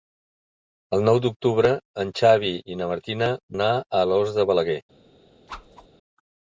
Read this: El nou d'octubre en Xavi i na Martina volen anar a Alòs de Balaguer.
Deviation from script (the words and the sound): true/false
true